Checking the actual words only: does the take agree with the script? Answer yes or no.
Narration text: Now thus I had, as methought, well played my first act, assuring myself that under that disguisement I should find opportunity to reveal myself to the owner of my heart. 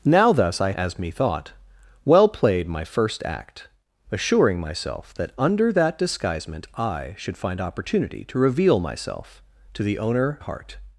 no